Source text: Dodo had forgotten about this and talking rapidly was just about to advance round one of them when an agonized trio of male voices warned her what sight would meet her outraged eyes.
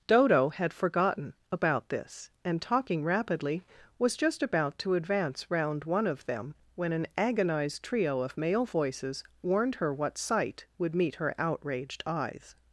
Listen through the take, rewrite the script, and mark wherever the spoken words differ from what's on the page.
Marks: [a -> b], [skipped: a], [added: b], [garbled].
Dodo had forgotten about this and talking rapidly was just about to advance round one of them when an agonized trio of male voices warned her what sight would meet her outraged eyes.